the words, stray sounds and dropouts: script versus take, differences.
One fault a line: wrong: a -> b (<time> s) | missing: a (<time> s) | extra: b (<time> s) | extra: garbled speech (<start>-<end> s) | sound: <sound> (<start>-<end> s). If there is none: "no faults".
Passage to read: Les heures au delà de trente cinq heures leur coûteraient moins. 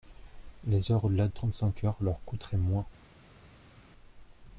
missing: de (1.3 s)